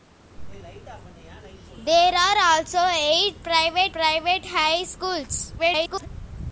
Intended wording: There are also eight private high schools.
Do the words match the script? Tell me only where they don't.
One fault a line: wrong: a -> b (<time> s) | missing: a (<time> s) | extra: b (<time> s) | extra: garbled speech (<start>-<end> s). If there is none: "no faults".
extra: private (3.9 s)
extra: garbled speech (5.6-6.1 s)